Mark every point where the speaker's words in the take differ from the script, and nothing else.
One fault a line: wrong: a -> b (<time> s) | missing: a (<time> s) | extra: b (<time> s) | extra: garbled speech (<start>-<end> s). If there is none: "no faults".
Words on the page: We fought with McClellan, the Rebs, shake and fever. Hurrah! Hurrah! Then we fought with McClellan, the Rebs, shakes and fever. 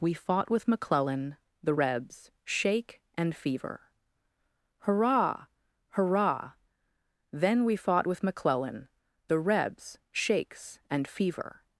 no faults